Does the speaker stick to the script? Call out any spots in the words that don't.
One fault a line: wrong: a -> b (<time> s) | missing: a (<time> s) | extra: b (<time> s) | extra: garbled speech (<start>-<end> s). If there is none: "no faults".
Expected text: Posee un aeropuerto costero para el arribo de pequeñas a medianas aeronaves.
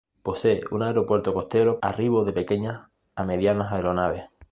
missing: para el (1.8 s)